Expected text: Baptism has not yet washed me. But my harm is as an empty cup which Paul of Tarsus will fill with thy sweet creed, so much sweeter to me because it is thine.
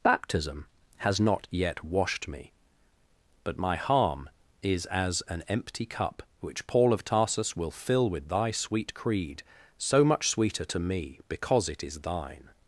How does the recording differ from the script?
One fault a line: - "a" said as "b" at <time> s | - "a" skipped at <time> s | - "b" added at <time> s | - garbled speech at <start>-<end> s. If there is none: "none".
none